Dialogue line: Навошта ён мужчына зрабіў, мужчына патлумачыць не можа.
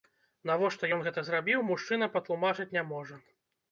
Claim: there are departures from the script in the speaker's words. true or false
true